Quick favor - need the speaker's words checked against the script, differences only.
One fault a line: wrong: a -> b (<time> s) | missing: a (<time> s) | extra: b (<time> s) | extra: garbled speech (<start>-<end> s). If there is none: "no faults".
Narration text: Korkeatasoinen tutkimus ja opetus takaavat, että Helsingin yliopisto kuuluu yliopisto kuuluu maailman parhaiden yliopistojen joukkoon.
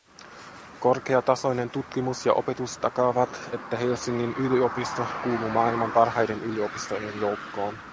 missing: yliopisto kuuluu (5.5 s)